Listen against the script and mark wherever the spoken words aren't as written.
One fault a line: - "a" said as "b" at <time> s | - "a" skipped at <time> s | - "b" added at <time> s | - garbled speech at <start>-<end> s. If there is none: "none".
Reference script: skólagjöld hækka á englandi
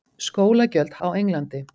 - "hækka" skipped at 0.9 s